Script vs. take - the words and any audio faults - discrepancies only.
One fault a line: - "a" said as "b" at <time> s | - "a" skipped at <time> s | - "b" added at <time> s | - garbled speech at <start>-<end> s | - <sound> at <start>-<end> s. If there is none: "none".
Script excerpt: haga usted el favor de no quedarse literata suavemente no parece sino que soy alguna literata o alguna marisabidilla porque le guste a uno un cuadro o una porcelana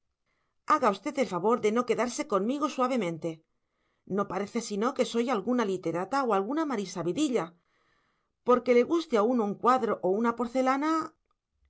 - "literata" said as "conmigo" at 2.3 s